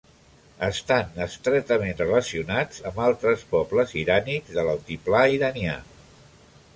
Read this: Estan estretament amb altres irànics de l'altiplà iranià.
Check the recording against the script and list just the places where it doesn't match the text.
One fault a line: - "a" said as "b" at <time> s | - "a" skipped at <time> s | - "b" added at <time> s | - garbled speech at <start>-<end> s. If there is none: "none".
- "relacionats" added at 2.0 s
- "pobles" added at 3.5 s